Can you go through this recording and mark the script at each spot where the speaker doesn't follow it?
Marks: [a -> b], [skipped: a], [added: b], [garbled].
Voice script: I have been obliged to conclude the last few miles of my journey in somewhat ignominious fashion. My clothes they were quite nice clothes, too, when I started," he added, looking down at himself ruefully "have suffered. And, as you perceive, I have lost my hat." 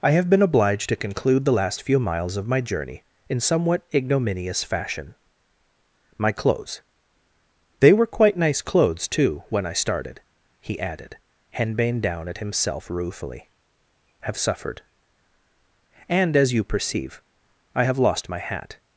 I have been obliged to conclude the last few miles of my journey in somewhat ignominious fashion. My clothes they were quite nice clothes, too, when I started," he added, [looking -> henbane] down at himself ruefully "have suffered. And, as you perceive, I have lost my hat."